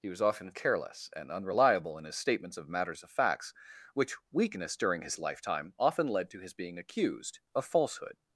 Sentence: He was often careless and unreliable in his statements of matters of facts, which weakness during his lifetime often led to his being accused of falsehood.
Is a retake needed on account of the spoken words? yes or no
no